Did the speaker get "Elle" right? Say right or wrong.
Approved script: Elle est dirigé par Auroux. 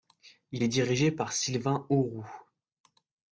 wrong